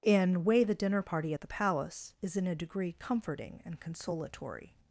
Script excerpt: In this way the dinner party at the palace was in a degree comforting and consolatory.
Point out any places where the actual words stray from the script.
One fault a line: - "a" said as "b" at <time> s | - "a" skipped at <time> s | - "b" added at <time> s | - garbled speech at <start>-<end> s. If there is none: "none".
- "this" skipped at 0.4 s
- "was" said as "is" at 2.2 s